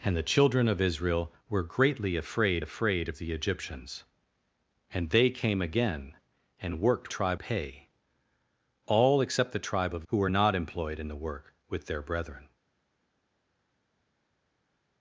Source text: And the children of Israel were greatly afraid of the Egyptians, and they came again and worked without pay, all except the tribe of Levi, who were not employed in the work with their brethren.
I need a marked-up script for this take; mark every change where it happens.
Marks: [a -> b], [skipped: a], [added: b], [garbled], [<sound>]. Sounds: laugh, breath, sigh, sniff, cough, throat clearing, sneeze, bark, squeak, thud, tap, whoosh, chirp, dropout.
And the children of Israel were greatly afraid [added: afraid] of the Egyptians, and they came again and worked [without -> tribe] pay, all except the tribe of [skipped: Levi,] who were not employed in the work with their brethren.